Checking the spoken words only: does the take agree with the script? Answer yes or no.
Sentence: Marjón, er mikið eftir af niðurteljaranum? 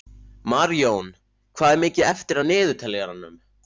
no